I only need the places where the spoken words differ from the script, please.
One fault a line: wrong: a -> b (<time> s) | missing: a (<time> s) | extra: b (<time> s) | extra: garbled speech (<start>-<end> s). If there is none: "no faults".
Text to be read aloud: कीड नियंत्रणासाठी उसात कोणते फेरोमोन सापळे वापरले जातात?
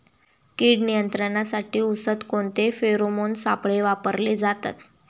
no faults